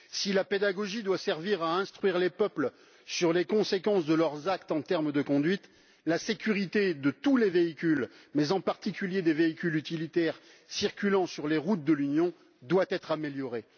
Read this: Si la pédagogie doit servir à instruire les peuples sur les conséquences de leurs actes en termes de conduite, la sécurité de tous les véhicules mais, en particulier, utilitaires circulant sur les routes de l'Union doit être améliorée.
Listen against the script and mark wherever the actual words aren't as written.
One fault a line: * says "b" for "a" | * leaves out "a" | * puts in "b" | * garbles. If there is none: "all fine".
* puts in "des véhicules"